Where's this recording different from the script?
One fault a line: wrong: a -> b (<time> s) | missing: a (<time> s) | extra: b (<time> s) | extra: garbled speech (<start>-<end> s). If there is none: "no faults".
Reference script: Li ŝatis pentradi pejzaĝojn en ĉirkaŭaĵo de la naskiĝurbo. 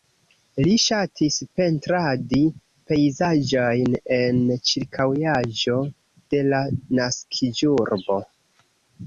no faults